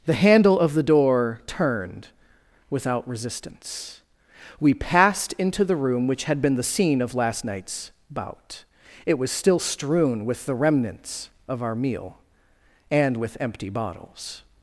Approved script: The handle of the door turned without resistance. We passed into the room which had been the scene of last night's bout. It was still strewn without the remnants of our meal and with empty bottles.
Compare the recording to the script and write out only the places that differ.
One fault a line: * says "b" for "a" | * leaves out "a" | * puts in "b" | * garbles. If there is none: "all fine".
* says "with" for "without"